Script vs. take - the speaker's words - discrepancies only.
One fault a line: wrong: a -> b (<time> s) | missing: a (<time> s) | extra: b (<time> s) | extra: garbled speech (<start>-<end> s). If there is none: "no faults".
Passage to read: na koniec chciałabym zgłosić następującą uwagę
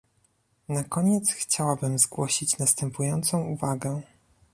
no faults